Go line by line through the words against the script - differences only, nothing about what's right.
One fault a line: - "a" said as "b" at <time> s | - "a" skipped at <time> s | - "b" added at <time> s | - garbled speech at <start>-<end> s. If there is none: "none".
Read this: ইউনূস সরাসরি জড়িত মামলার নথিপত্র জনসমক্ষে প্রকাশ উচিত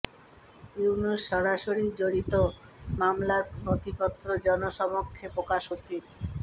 none